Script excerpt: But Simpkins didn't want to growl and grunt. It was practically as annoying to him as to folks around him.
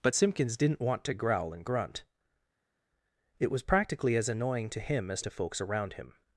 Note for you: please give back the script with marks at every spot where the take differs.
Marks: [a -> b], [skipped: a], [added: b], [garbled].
But Simpkins didn't want to growl and grunt. It was practically as annoying to him as to folks around him.